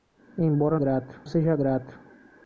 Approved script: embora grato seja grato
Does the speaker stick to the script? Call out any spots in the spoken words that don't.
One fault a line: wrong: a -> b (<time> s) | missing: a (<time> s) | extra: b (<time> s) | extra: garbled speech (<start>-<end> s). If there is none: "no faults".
no faults